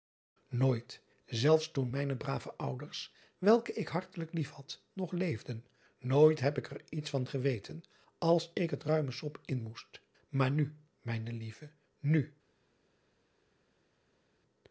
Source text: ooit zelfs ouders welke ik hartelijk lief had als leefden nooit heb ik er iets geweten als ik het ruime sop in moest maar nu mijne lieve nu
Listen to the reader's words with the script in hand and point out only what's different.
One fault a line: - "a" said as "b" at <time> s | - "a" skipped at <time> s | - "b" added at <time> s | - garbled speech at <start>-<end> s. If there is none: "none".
- "toen mijne brave" added at 1.7 s
- "als" said as "nog" at 4.9 s
- "van" added at 7.1 s